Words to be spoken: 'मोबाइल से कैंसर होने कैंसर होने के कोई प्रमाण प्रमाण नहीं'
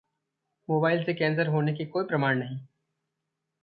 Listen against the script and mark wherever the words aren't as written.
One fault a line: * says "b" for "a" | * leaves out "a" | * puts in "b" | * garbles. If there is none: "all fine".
* leaves out "कैंसर होने"
* leaves out "प्रमाण"